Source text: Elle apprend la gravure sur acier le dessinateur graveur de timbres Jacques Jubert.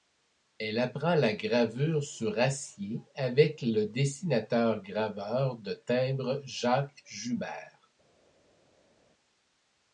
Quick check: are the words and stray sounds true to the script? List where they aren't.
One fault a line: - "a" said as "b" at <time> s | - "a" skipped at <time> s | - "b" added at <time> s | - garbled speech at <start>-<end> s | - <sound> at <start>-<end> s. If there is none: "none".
- "avec" added at 3.2 s